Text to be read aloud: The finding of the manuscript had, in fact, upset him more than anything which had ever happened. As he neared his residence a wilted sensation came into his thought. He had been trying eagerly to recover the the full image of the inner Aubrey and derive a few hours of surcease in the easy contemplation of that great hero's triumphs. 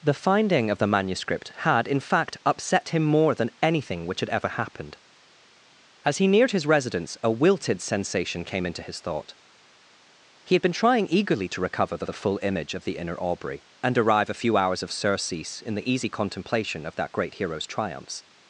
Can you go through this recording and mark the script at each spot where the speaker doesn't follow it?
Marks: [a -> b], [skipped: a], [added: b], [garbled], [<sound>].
The finding of the manuscript had, in fact, upset him more than anything which had ever happened. As he neared his residence a wilted sensation came into his thought. He had been trying eagerly to recover the the full image of the inner Aubrey and derive a few hours of surcease in the easy contemplation of that great hero's triumphs.